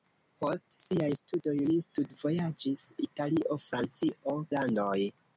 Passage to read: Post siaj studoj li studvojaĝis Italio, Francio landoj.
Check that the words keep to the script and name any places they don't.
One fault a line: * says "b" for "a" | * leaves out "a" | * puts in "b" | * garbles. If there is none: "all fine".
all fine